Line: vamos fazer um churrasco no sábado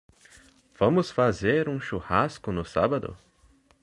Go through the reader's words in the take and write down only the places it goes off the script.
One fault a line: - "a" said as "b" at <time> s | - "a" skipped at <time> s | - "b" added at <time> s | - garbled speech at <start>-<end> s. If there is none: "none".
none